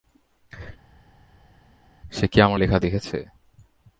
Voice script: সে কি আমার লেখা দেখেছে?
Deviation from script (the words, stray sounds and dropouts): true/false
false